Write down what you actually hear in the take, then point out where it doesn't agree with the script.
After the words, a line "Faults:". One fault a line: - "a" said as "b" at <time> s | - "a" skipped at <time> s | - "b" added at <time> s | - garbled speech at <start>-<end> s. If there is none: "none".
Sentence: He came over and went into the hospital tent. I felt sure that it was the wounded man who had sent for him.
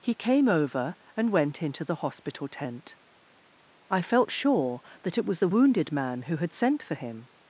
He came over and went into the hospital tent. I felt sure that it was the wounded man who had sent for him.
Faults:
none